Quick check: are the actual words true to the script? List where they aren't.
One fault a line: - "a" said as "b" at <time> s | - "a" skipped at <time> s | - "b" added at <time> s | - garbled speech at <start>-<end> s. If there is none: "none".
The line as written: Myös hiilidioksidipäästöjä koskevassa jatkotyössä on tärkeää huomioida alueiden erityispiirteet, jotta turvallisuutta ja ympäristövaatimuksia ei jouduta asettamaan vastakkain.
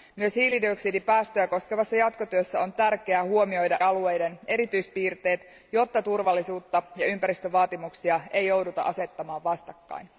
none